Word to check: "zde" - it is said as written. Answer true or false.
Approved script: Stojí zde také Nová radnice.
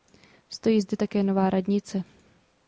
true